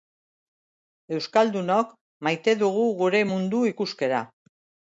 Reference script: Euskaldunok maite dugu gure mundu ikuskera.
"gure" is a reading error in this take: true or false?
false